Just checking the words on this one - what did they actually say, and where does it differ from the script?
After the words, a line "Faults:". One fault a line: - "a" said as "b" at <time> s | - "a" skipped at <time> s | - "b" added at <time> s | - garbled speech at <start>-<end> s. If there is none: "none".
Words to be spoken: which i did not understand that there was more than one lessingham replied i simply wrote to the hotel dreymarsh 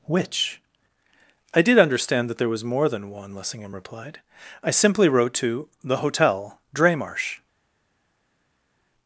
which i did understand that there was more than one lessingham replied i simply wrote to the hotel dreymarsh
Faults:
- "not" skipped at 1.8 s